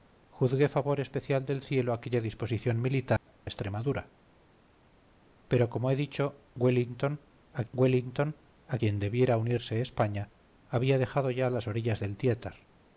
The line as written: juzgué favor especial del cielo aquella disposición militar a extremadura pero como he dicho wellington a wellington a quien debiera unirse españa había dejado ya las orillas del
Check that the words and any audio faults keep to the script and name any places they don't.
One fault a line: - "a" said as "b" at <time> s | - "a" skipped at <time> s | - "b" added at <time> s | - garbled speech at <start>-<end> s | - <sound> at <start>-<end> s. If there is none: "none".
- dropout at 3.2-3.3 s